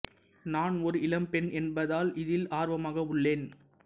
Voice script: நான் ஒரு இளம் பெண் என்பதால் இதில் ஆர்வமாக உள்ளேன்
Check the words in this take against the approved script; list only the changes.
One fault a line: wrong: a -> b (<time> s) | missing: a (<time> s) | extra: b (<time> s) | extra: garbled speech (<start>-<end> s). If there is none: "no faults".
no faults